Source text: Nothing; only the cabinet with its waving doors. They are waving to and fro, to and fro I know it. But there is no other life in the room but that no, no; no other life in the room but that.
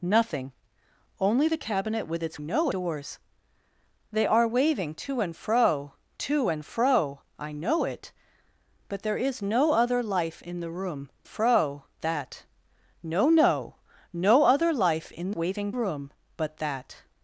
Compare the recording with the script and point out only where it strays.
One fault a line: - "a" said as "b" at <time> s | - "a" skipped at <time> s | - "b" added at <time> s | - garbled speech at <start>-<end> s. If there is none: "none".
- "waving" said as "know" at 2.4 s
- "but" said as "fro" at 11.3 s
- "the" said as "waving" at 15.3 s